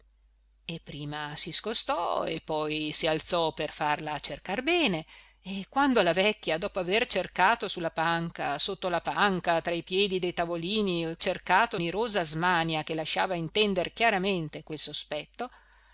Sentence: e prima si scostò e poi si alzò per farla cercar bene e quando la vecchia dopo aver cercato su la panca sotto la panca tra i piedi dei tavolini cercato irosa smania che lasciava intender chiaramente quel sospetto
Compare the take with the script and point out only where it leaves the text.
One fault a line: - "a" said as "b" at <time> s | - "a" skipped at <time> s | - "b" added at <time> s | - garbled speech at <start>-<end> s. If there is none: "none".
none